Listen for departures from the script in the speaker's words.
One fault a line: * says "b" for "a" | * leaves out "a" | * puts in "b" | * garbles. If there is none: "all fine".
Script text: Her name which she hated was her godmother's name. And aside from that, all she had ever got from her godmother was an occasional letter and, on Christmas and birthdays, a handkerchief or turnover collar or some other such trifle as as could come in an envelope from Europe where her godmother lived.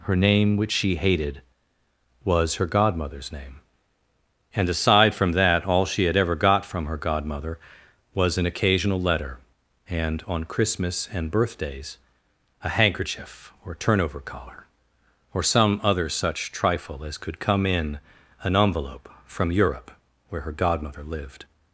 * leaves out "as"